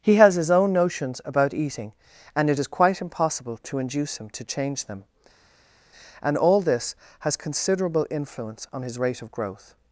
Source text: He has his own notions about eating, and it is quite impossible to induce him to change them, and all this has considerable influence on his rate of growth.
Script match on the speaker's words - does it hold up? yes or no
yes